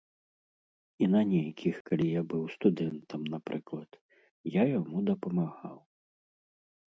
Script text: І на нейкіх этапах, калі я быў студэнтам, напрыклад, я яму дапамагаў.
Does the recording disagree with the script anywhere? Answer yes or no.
yes